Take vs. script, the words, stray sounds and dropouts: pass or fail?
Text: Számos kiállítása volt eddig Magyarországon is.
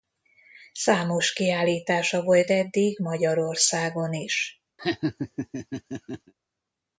fail